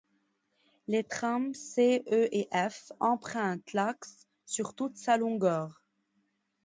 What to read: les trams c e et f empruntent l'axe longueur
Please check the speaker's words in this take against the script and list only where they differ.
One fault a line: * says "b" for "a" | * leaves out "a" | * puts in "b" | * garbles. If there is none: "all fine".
* puts in "sur toute sa"